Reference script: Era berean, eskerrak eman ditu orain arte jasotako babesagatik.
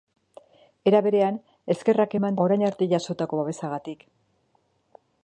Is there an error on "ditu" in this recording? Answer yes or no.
yes